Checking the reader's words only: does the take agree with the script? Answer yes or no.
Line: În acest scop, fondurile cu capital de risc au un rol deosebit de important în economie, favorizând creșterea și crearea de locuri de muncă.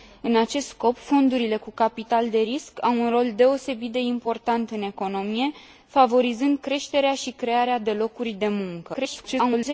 no